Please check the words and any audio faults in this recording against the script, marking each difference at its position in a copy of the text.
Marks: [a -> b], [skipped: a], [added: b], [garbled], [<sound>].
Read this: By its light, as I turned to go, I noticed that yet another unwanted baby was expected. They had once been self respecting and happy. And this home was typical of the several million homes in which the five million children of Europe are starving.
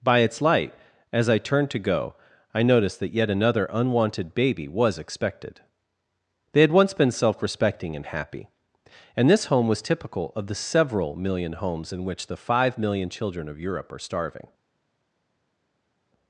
By its light, as I turned to go, I noticed that yet another unwanted baby was expected. They had once been self respecting and happy. And this home was typical of the several million homes in which the five million children of Europe are starving.